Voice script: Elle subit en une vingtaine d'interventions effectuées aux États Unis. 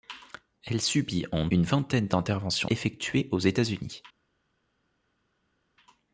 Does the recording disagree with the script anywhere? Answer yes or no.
no